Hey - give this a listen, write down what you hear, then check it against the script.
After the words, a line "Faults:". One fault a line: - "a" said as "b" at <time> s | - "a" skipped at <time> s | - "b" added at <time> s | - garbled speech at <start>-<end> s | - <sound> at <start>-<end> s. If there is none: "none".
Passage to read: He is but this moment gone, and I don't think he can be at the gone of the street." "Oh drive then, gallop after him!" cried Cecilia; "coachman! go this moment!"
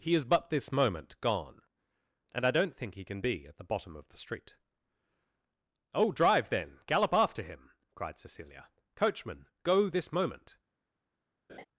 He is but this moment gone, and I don't think he can be at the bottom of the street." "Oh drive then, gallop after him!" cried Cecilia; "coachman! go this moment!"
Faults:
- "gone" said as "bottom" at 3.7 s
- laugh at 11.5-11.7 s